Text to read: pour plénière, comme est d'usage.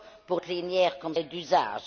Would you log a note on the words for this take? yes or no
no